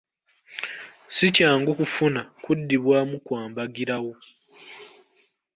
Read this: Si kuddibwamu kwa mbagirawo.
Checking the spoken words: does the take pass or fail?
fail